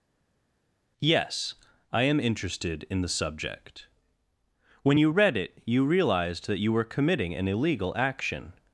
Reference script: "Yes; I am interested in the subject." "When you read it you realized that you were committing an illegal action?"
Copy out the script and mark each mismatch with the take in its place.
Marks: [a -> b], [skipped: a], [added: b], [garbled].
"Yes; I am interested in the subject." "When you read it you realized that you were committing an illegal action?"